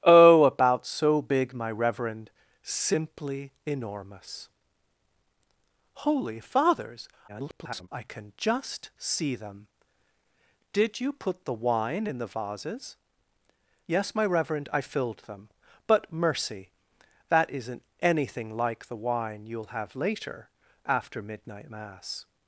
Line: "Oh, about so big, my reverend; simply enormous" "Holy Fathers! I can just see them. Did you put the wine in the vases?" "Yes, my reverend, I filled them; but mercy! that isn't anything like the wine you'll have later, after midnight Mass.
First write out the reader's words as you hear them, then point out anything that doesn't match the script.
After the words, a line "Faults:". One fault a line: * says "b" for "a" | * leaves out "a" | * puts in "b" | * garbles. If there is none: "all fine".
"Oh, about so big, my reverend; simply enormous" "Holy Fathers! [garbled] I can just see them. Did you put the wine in the vases?" "Yes, my reverend, I filled them; but mercy! that isn't anything like the wine you'll have later, after midnight Mass.
Faults:
* garbles